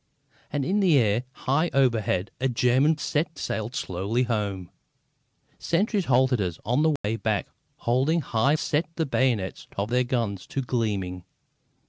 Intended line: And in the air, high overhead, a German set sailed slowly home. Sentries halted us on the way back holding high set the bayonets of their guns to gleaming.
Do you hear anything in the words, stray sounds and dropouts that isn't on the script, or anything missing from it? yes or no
yes